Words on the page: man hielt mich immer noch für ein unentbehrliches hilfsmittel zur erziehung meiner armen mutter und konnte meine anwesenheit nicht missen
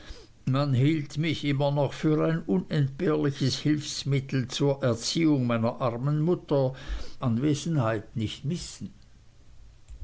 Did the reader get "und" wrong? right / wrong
wrong